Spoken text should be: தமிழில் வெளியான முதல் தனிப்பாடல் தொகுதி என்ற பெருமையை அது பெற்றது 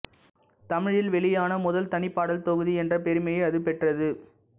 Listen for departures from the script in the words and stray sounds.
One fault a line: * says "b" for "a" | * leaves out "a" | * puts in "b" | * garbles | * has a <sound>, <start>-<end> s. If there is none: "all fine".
all fine